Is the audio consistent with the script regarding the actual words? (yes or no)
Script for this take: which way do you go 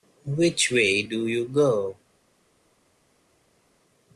yes